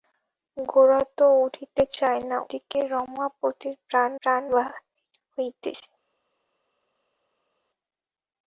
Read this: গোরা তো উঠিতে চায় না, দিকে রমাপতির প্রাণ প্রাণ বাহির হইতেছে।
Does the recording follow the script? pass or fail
pass